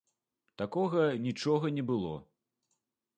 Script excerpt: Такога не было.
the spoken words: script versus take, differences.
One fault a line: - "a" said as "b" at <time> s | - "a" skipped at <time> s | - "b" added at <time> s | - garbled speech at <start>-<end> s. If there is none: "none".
- "нічога" added at 1.2 s